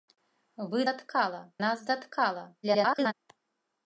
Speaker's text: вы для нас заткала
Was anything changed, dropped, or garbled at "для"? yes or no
yes